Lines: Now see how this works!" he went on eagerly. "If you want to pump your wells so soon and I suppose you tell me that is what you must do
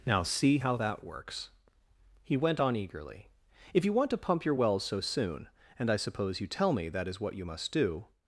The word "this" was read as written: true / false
false